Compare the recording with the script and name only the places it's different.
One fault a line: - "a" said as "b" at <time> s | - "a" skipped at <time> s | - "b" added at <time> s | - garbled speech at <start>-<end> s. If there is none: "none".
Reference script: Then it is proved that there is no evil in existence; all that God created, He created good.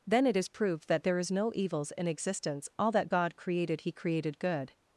- "evil" said as "evils" at 1.6 s